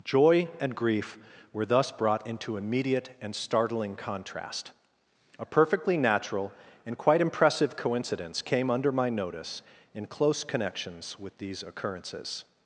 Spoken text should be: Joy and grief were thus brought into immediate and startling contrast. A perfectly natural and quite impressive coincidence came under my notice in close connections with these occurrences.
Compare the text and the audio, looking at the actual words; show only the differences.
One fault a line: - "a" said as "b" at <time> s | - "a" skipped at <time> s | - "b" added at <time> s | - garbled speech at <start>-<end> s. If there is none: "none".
none